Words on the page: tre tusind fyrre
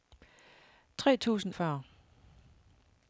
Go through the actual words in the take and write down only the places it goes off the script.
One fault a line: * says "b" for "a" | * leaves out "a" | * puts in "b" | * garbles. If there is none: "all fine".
all fine